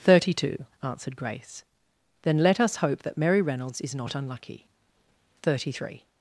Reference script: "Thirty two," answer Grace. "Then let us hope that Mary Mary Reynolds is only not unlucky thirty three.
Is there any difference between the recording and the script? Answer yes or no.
yes